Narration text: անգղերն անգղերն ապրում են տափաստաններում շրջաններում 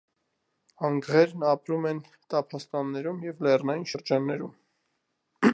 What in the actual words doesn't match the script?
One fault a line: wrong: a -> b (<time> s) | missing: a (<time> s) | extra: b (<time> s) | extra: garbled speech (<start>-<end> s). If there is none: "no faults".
missing: անգղերն (1.4 s)
extra: և լեռնային (3.3 s)